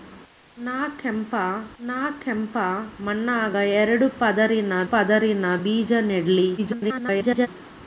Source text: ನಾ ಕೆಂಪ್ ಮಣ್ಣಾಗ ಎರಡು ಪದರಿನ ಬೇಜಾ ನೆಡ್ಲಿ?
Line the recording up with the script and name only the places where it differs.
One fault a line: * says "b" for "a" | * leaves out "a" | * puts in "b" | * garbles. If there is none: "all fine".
* puts in "ನಾ ಕೆಂಪ್"
* puts in "ಪದರಿನ"
* garbles